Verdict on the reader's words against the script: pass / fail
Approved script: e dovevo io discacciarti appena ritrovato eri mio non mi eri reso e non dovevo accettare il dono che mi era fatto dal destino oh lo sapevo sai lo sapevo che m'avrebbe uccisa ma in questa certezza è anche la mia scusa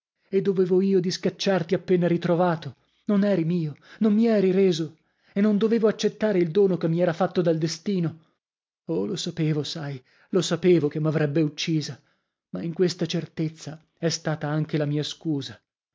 fail